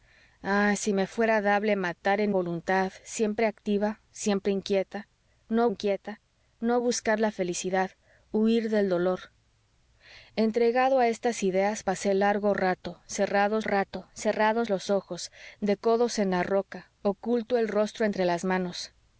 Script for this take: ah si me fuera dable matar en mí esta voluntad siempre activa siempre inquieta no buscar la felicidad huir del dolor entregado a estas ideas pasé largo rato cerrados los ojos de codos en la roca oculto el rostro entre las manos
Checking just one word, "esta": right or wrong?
wrong